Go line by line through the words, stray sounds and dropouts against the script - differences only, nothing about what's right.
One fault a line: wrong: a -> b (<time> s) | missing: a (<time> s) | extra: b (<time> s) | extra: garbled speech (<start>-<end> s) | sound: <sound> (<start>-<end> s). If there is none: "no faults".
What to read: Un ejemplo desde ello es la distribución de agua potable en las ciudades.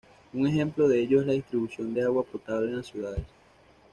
wrong: desde -> de (0.9 s)